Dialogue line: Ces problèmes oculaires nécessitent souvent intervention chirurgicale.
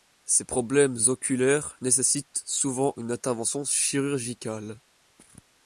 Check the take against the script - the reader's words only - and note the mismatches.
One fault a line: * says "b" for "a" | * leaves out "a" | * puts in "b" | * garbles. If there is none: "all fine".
* puts in "une"